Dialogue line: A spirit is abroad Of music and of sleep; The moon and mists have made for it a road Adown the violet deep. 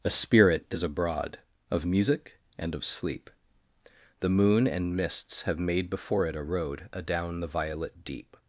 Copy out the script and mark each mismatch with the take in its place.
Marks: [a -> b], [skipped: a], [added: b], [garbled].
A spirit is abroad Of music and of sleep; The moon and mists have made [for -> before] it a road Adown the violet deep.